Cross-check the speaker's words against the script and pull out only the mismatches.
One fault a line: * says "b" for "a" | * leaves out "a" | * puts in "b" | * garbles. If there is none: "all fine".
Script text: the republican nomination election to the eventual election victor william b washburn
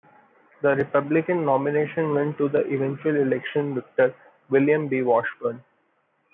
* says "went" for "election"